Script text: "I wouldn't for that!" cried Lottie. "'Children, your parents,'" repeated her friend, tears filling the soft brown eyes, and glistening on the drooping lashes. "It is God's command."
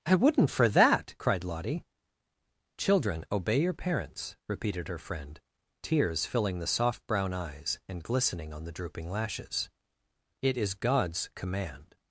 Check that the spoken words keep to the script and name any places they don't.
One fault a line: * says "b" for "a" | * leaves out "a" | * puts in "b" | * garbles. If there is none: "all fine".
* puts in "obey"